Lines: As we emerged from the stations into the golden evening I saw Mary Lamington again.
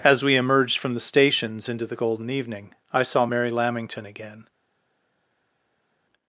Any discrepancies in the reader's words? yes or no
no